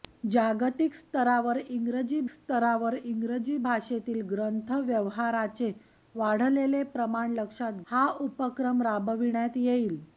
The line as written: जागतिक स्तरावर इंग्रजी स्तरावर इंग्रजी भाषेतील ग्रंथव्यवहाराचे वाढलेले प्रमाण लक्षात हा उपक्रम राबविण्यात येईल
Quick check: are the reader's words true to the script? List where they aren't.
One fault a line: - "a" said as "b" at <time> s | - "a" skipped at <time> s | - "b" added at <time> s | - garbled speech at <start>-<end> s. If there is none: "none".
none